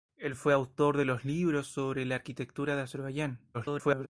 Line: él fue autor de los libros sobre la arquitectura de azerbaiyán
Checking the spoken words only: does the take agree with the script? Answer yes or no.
no